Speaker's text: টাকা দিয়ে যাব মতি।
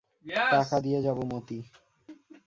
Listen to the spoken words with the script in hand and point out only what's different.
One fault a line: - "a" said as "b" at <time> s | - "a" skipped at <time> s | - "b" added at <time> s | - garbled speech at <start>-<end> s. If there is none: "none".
none